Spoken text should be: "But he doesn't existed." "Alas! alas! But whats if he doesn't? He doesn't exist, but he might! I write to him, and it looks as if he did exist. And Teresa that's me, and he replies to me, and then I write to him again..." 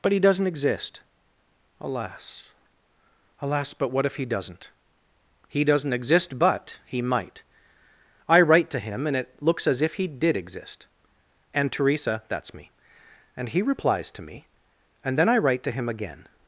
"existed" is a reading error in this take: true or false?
true